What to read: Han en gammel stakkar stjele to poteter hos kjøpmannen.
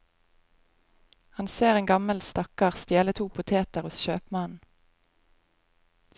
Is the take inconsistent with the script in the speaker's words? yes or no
yes